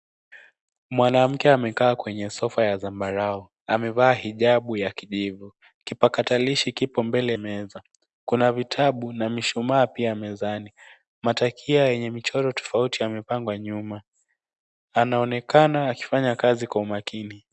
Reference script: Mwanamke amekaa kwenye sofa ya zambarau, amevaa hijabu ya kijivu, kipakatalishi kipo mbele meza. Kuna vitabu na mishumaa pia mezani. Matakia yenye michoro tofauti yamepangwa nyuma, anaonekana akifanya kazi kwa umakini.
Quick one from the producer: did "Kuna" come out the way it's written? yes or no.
yes